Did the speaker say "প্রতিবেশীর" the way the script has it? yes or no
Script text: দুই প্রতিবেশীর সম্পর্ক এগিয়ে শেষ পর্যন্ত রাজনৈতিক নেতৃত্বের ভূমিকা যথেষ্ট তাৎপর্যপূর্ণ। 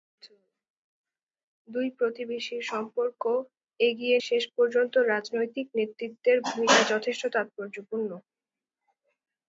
yes